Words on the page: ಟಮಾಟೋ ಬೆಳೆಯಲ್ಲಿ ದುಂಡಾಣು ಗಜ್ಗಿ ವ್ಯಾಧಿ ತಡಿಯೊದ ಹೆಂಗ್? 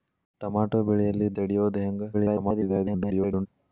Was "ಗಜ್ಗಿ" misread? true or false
true